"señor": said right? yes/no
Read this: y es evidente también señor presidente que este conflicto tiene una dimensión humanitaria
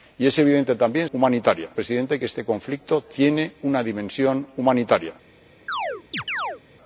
no